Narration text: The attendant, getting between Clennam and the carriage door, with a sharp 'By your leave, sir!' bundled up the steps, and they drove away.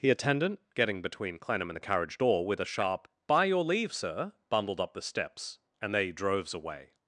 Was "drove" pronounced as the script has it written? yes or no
no